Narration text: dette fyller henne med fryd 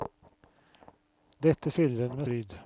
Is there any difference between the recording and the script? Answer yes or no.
no